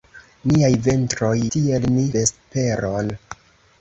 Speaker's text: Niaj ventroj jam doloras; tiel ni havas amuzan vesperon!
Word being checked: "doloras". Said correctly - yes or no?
no